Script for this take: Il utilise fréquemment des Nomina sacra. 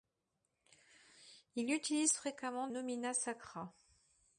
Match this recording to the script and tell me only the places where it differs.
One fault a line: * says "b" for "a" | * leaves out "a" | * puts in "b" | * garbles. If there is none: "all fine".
* leaves out "des"